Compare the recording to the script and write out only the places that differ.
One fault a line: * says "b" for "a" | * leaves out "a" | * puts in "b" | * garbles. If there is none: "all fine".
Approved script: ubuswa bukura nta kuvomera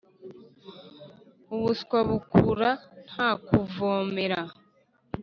all fine